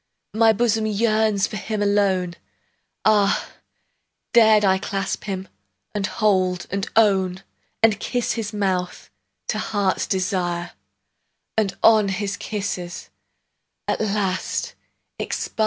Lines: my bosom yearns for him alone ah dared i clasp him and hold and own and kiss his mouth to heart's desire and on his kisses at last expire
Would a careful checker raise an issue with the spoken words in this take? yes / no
no